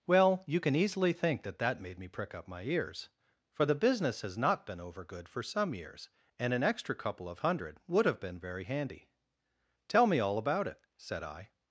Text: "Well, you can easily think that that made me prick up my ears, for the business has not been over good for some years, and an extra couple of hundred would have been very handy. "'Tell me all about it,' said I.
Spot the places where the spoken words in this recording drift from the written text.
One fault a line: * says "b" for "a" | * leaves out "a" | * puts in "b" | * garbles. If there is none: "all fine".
all fine